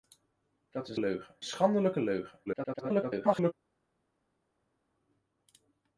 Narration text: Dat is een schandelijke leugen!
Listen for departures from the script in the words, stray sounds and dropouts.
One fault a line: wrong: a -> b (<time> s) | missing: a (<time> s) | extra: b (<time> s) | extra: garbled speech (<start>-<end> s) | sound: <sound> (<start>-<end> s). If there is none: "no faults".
wrong: een -> leugen (1.0 s)
extra: garbled speech (2.5-3.5 s)